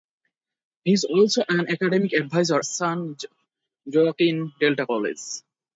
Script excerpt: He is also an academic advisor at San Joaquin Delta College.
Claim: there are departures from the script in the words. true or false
true